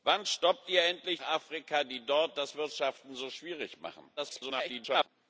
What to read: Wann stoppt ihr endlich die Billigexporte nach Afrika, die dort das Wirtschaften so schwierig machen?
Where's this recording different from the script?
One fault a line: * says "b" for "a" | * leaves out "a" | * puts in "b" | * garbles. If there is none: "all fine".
* leaves out "die Billigexporte nach"
* garbles